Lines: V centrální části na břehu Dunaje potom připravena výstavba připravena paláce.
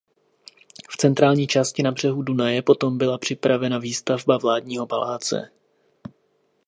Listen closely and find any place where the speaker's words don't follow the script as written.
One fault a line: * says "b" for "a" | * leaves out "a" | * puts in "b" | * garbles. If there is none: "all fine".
* puts in "byla"
* says "vládního" for "připravena"